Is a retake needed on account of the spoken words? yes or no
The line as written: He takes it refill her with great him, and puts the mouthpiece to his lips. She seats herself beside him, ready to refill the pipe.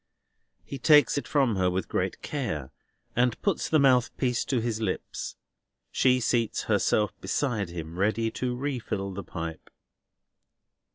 yes